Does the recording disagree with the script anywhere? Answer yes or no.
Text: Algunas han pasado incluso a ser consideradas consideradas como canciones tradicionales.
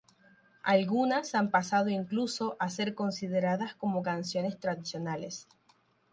yes